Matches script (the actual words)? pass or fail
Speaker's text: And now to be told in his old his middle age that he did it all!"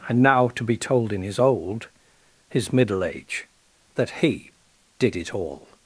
pass